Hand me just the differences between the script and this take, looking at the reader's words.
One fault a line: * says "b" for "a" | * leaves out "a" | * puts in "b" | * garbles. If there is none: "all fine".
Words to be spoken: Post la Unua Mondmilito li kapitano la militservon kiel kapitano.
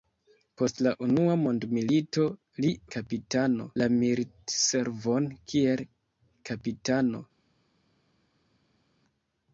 all fine